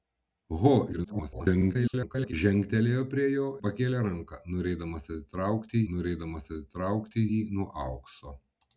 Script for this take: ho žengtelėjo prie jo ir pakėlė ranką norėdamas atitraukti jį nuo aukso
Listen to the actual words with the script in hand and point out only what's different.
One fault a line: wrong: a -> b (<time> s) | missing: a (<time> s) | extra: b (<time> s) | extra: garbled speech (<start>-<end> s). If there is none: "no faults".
extra: garbled speech (0.9-2.3 s)
missing: ir (3.5 s)
extra: norėdamas atitraukti (6.0 s)